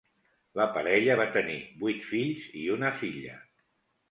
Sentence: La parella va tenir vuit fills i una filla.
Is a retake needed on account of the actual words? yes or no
no